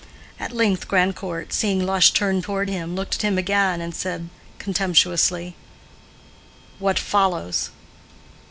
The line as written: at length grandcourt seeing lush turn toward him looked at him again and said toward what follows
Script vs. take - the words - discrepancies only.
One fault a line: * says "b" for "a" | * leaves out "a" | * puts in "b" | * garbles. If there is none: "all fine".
* says "contemptuously" for "toward"